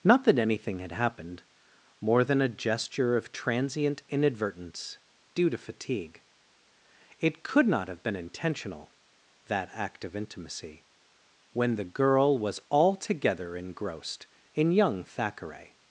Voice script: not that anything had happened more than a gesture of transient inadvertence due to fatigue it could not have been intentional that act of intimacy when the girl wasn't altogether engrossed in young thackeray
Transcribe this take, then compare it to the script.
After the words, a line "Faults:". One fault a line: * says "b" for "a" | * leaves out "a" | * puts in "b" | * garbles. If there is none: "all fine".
not that anything had happened more than a gesture of transient inadvertence due to fatigue it could not have been intentional that act of intimacy when the girl was altogether engrossed in young thackeray
Faults:
* says "was" for "wasn't"